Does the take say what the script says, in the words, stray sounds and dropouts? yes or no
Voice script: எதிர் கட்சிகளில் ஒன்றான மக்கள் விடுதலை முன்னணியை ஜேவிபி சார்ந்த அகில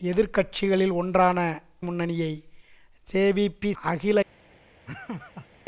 no